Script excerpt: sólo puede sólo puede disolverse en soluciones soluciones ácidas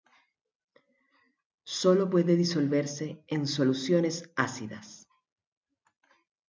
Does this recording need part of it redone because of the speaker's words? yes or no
yes